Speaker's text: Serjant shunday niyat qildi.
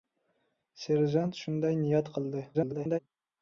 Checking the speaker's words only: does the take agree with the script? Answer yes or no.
no